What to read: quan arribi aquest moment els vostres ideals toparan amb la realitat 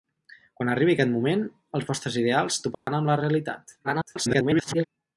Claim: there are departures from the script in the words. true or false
true